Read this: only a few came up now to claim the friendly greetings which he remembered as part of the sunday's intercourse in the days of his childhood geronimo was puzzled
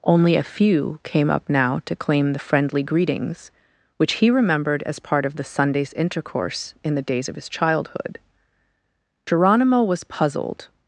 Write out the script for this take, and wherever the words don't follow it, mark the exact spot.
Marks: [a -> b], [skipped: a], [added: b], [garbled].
only a few came up now to claim the friendly greetings which he remembered as part of the sunday's intercourse in the days of his childhood geronimo was puzzled